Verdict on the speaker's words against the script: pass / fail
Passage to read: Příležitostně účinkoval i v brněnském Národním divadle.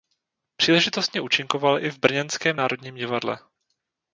pass